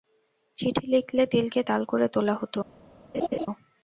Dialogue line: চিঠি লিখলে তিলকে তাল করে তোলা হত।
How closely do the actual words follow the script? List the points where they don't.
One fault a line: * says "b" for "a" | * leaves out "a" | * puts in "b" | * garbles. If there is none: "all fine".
all fine